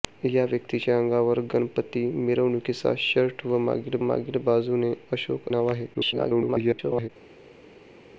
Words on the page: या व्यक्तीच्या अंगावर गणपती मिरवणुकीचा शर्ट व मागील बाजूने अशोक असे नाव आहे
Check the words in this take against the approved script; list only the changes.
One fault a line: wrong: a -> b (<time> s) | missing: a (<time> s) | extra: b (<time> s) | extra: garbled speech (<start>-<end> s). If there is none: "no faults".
extra: मागील (4.0 s)
missing: असे (5.5 s)
extra: garbled speech (5.9-7.1 s)